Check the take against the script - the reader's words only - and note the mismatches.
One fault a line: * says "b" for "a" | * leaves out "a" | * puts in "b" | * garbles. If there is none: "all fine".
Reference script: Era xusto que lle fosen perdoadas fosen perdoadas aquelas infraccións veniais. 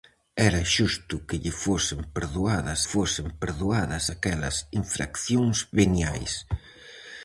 all fine